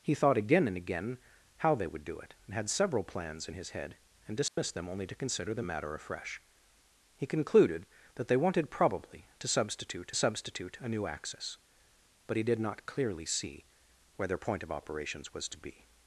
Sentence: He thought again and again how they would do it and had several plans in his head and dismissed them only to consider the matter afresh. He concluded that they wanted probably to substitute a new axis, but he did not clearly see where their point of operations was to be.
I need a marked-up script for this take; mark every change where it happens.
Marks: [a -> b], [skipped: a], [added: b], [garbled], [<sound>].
He thought again and again how they would do it and had several plans in his head and dismissed [dropout] them only to consider the matter afresh. He concluded that they wanted probably to substitute [added: substitute] a new axis, but he did not clearly see where their point of operations was to be.